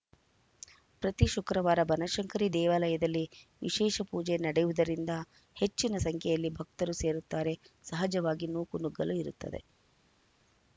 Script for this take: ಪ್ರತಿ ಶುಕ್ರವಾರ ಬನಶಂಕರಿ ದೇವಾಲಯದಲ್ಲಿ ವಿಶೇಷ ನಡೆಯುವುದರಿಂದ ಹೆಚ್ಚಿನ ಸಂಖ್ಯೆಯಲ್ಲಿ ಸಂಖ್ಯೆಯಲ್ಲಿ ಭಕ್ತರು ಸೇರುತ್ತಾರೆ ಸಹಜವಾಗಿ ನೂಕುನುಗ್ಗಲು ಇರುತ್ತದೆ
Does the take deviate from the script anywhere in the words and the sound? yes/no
yes